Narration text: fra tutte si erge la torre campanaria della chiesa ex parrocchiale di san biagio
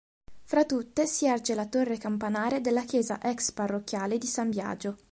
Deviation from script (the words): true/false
false